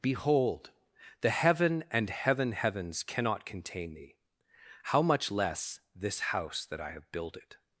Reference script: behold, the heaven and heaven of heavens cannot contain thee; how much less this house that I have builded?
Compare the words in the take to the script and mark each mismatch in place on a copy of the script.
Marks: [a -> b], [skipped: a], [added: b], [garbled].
behold, the heaven and heaven [skipped: of] heavens cannot contain thee; how much less this house that I have builded?